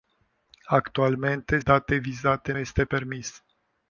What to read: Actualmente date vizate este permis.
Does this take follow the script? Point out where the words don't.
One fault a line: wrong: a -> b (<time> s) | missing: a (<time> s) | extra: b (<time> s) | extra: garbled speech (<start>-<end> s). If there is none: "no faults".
no faults